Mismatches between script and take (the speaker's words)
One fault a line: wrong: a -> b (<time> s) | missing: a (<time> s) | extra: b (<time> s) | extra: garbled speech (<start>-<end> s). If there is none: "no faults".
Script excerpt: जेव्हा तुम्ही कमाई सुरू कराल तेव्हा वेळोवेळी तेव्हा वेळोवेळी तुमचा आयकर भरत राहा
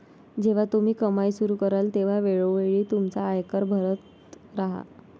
missing: तेव्हा वेळोवेळी (2.8 s)